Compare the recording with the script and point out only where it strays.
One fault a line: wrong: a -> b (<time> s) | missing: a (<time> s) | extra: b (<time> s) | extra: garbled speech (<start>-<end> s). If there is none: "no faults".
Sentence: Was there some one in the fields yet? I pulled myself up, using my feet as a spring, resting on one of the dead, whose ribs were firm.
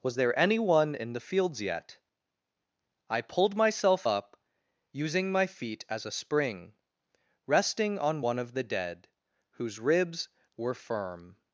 wrong: some -> any (0.4 s)